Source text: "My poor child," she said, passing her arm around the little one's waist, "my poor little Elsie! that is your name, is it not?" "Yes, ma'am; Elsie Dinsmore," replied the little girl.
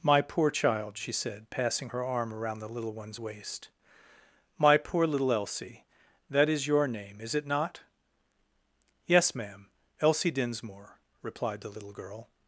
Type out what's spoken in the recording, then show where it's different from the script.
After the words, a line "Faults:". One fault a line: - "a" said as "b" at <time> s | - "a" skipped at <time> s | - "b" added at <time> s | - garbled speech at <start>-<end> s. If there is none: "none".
"My poor child," she said, passing her arm around the little one's waist, "my poor little Elsie! that is your name, is it not?" "Yes, ma'am; Elsie Dinsmore," replied the little girl.
Faults:
none